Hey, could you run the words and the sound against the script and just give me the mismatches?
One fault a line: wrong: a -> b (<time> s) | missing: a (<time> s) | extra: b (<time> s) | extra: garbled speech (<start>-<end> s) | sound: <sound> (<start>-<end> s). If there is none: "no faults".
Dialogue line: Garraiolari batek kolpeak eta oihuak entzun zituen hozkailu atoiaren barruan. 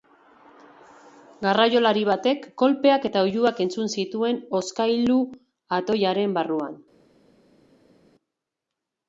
no faults